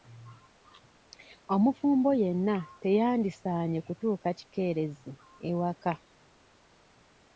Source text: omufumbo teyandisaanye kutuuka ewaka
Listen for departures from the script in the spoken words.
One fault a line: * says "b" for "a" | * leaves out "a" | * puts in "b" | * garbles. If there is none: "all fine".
* puts in "yenna"
* puts in "kikeerezi"